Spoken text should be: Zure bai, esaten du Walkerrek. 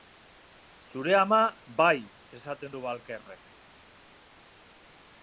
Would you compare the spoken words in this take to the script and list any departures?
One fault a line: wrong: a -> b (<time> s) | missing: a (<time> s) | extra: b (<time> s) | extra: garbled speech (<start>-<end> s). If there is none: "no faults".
extra: ama (1.2 s)